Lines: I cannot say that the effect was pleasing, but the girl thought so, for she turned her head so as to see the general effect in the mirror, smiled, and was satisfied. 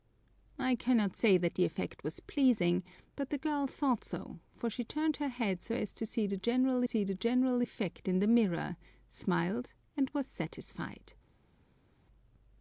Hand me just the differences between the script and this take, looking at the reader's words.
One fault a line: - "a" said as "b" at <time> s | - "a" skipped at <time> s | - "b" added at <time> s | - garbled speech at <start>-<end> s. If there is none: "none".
- "see the general" added at 6.8 s